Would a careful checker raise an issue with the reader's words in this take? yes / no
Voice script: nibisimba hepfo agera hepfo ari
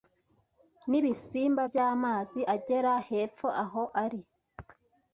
yes